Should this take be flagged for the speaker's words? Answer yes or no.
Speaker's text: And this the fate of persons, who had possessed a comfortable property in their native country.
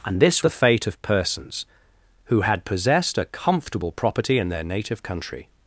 no